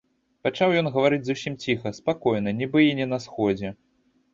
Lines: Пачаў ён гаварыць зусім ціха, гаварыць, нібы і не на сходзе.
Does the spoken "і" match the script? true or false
true